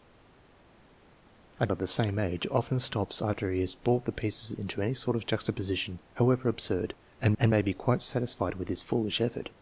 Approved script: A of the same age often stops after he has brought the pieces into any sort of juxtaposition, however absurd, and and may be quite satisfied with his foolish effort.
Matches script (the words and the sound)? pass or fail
pass